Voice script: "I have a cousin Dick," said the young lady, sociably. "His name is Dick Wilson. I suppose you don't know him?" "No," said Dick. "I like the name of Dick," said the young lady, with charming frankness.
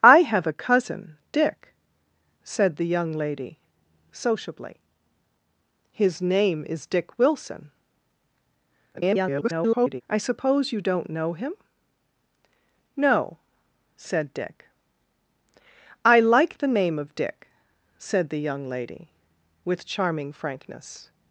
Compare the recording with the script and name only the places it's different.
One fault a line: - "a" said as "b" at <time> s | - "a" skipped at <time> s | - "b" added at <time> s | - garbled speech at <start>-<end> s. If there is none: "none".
- garbled speech at 8.9-10.0 s